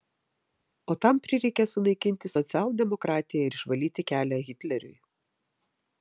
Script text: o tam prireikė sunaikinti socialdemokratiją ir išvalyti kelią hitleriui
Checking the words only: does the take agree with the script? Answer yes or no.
yes